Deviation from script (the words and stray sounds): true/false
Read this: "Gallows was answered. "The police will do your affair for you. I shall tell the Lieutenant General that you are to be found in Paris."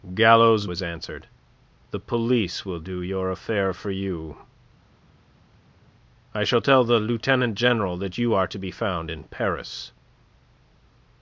false